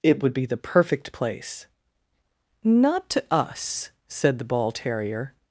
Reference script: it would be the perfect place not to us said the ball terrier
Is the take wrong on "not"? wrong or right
right